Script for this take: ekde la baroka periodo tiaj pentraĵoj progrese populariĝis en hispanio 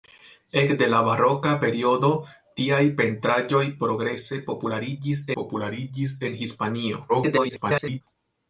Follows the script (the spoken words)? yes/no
no